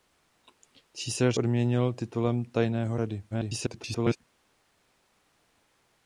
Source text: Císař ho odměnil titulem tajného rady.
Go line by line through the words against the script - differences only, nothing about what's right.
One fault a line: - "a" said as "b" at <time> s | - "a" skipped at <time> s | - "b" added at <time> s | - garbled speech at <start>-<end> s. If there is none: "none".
- "ho" skipped at 1.4 s
- garbled speech at 3.3-4.2 s